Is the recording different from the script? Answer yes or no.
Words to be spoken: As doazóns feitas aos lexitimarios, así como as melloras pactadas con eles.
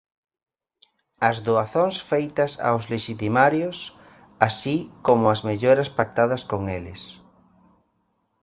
no